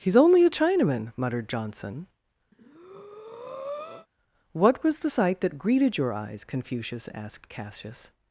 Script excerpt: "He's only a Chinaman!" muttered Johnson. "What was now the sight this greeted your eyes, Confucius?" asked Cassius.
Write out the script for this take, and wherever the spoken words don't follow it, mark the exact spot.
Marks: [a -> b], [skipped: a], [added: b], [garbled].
"He's only a Chinaman!" muttered Johnson. "What was [skipped: now] the sight [this -> that] greeted your eyes, Confucius?" asked Cassius.